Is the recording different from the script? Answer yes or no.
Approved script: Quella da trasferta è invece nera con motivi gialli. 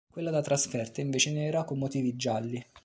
no